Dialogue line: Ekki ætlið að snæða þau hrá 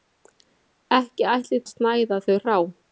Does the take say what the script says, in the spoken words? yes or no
yes